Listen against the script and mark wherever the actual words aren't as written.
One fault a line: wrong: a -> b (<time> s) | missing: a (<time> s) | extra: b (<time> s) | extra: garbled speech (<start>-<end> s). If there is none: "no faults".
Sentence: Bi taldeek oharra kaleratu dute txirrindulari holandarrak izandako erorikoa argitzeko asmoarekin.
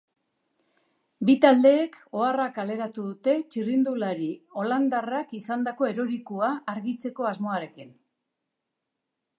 no faults